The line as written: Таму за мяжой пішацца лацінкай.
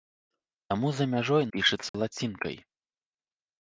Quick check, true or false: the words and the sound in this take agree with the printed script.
false